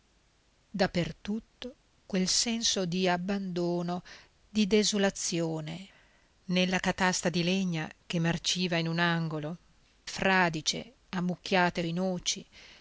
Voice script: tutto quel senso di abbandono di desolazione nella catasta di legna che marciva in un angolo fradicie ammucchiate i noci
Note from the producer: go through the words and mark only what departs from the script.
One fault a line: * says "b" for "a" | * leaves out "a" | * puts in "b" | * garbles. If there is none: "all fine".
all fine